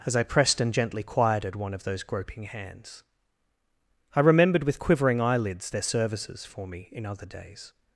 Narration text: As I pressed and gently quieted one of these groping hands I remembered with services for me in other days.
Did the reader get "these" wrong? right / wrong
wrong